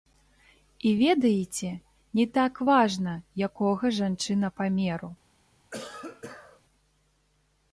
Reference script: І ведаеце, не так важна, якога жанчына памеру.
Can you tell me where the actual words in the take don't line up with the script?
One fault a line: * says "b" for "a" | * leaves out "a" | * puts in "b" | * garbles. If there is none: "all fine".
all fine